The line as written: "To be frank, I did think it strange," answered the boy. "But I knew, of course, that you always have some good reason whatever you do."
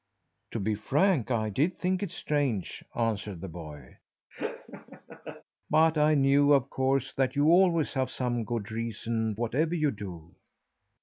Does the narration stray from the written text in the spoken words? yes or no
no